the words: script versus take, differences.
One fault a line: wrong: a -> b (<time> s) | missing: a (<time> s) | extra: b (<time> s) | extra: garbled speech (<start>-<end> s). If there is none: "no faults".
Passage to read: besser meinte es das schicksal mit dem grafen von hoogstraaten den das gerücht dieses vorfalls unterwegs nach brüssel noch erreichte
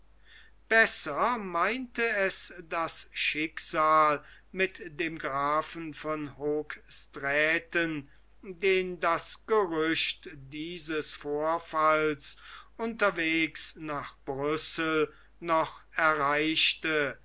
no faults